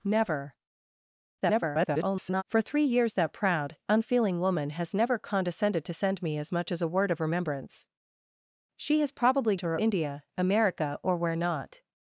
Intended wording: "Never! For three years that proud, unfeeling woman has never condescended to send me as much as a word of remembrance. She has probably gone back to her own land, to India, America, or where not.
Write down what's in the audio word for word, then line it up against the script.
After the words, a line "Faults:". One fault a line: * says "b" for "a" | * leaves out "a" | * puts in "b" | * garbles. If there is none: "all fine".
"Never! [garbled] For three years that proud, unfeeling woman has never condescended to send me as much as a word of remembrance. She has probably to her India, America, or where not.
Faults:
* garbles
* leaves out "gone back"
* leaves out "own land to"